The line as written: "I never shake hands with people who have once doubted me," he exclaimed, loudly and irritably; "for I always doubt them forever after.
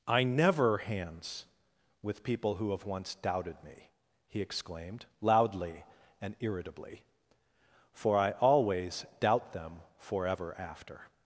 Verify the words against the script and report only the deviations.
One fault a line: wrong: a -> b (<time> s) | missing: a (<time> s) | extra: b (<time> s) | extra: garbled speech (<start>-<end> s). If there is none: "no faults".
missing: shake (0.8 s)